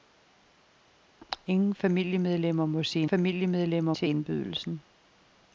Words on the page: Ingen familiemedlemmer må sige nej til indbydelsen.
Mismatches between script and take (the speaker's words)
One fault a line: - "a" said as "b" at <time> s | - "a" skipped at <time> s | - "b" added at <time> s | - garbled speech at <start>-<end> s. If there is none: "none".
- "nej" said as "familiemedlemmer" at 3.0 s